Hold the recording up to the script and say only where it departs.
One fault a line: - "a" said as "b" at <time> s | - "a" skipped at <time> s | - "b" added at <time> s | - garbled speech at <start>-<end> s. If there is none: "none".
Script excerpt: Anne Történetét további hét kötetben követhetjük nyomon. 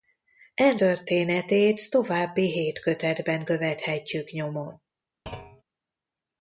none